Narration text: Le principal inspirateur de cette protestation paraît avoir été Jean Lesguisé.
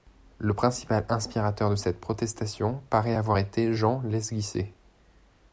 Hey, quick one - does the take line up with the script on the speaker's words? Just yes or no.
yes